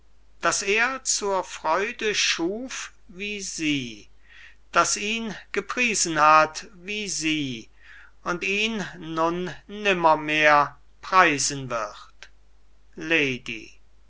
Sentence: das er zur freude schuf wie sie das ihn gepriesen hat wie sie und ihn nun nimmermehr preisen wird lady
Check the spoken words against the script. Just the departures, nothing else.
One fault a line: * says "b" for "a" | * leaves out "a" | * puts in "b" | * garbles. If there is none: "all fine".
all fine